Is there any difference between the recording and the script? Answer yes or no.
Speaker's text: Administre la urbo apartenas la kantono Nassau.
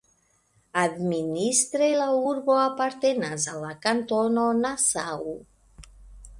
yes